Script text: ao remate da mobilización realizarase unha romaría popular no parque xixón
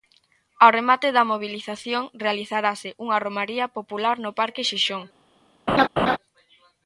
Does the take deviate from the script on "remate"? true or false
false